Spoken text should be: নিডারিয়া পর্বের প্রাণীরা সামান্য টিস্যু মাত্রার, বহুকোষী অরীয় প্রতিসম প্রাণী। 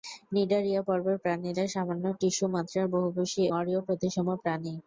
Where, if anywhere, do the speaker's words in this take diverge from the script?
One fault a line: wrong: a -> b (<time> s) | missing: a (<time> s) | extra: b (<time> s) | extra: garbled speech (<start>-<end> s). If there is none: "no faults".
no faults